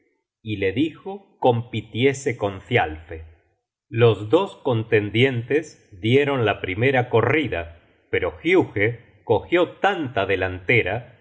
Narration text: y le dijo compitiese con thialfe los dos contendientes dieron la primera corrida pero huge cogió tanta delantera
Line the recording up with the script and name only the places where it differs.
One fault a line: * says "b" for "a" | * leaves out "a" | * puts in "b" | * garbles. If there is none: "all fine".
all fine